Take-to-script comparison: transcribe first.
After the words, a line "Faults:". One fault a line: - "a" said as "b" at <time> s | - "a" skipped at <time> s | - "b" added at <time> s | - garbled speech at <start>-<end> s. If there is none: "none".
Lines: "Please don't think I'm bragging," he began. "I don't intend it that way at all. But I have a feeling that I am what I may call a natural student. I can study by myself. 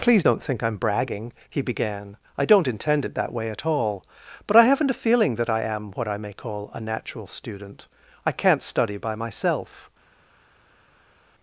"Please don't think I'm bragging," he began. "I don't intend it that way at all. But I haven't a feeling that I am what I may call a natural student. I can't study by myself.
Faults:
- "have" said as "haven't" at 4.6 s
- "can" said as "can't" at 8.3 s